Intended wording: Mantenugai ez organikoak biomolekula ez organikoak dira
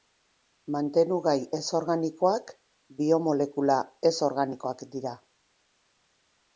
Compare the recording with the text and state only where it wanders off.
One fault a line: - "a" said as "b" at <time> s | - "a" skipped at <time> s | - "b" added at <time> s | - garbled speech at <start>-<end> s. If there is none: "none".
none